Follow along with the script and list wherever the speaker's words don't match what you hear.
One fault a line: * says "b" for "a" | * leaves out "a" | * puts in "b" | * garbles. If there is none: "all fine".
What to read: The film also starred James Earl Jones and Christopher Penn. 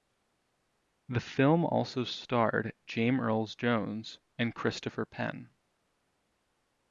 all fine